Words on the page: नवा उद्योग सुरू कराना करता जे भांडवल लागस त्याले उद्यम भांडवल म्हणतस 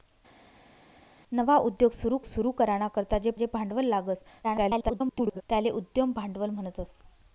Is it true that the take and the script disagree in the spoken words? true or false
true